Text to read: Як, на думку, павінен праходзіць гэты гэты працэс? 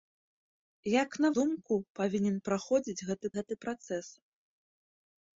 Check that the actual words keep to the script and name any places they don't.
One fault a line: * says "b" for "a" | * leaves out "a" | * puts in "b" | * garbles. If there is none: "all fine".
all fine